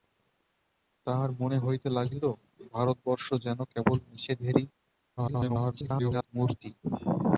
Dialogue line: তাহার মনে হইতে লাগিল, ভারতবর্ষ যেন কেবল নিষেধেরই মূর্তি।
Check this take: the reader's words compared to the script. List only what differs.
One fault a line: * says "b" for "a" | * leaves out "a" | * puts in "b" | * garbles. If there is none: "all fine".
* garbles